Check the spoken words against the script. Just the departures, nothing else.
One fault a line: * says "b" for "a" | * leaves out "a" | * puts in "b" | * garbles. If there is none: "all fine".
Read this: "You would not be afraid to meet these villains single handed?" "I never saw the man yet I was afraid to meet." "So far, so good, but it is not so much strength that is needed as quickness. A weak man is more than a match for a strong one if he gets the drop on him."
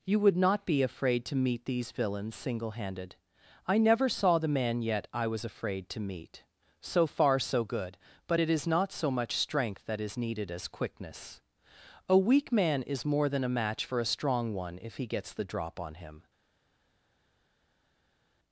all fine